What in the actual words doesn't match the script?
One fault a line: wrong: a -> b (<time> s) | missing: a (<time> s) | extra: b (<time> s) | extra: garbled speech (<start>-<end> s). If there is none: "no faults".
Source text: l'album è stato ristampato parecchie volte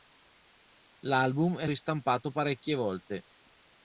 missing: stato (1.7 s)